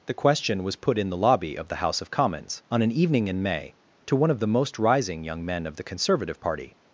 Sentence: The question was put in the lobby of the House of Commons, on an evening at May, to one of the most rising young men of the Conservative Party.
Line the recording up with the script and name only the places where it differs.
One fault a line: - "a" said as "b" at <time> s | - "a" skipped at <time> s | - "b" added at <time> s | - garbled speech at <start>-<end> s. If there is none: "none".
- "at" said as "in" at 3.3 s